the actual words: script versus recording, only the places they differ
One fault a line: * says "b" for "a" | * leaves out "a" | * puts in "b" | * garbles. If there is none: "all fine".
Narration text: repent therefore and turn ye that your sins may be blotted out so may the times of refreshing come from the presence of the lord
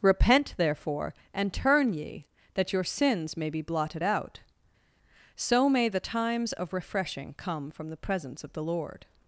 all fine